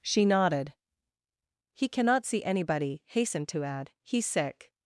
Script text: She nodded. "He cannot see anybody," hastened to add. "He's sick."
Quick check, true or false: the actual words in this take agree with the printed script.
true